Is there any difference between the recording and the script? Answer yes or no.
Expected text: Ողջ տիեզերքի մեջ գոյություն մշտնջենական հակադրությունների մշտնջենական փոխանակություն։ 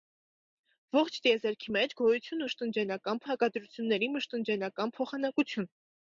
no